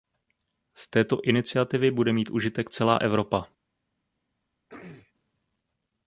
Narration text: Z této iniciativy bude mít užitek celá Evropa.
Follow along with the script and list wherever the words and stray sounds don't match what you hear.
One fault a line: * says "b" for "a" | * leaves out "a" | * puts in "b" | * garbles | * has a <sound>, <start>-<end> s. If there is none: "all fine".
* has a throat clearing, 4.7-5.1 s